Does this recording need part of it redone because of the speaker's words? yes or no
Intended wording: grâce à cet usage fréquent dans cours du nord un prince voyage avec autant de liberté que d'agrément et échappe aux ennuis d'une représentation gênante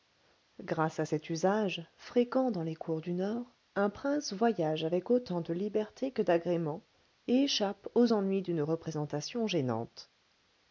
yes